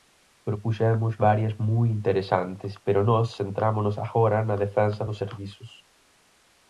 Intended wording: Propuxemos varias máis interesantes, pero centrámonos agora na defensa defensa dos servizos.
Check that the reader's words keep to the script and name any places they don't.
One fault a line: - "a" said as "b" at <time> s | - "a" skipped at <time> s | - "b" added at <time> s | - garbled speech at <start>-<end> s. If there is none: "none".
- "máis" said as "moi" at 1.7 s
- "nós" added at 3.1 s
- "defensa" skipped at 5.0 s